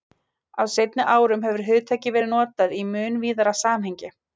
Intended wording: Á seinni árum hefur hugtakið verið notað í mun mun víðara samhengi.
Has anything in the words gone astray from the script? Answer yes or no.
yes